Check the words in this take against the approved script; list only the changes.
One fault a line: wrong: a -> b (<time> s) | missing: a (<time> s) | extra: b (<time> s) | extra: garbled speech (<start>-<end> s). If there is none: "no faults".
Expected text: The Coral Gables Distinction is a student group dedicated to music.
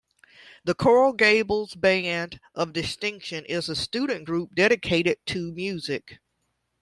extra: Band of (1.8 s)